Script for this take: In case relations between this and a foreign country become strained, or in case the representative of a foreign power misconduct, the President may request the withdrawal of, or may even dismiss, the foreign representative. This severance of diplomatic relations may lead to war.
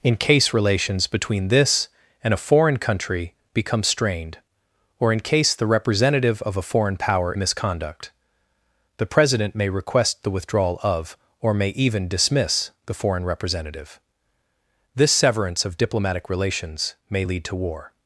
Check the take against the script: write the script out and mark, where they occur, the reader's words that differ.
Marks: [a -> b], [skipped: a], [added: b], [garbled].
In case relations between this and a foreign country become strained, or in case the representative of a foreign power misconduct, the President may request the withdrawal of, or may even dismiss, the foreign representative. This severance of diplomatic relations may lead to war.